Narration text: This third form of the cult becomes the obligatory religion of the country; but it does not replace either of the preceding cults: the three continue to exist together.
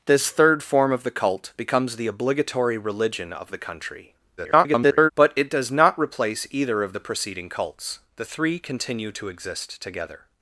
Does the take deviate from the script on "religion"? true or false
false